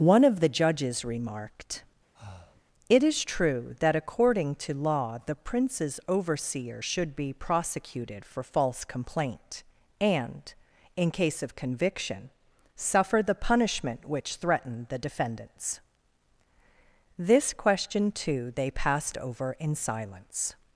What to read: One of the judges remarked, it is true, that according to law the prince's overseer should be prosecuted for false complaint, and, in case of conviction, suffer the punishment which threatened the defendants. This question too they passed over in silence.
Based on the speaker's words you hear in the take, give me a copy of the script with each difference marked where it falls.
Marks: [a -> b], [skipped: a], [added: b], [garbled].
One of the judges remarked, it is true, that according to law the prince's overseer should be prosecuted for false complaint, and, in case of conviction, suffer the punishment which threatened the defendants. This question too they passed over in silence.